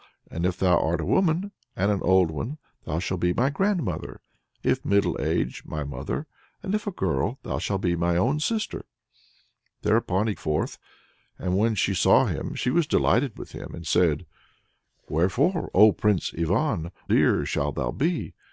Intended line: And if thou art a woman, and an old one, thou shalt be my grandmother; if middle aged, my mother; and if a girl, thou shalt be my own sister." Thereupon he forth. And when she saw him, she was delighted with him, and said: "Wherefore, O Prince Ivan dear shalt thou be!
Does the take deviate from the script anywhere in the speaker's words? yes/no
no